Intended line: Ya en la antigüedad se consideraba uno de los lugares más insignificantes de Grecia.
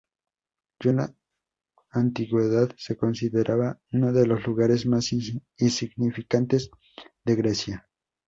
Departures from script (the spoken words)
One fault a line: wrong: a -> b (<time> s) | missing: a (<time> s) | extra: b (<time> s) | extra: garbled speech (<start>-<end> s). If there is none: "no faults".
no faults